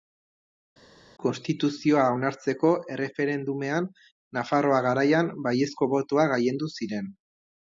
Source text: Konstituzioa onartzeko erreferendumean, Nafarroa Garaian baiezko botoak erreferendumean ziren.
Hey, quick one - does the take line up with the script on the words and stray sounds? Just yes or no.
no